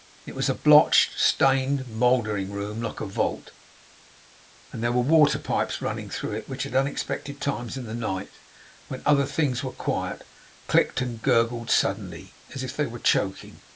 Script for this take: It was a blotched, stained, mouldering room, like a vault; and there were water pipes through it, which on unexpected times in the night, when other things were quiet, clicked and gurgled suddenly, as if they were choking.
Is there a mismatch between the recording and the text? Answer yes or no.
yes